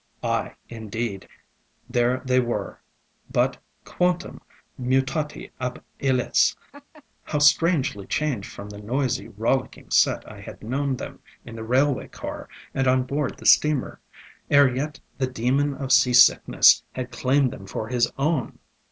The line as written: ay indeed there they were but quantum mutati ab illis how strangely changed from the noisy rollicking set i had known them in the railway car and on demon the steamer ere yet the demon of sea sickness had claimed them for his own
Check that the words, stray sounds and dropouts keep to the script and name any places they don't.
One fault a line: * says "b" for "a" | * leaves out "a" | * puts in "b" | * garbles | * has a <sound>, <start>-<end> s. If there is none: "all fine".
* has a laugh, 6.7-7.0 s
* says "board" for "demon"